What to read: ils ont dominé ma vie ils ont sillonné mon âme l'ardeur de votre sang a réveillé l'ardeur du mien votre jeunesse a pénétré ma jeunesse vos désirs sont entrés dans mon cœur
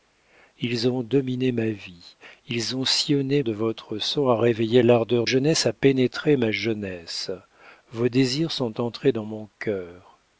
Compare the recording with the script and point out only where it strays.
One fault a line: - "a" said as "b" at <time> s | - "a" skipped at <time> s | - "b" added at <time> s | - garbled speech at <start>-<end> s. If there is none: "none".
- "mon âme l'ardeur" skipped at 3.4 s
- "du mien votre" skipped at 5.2 s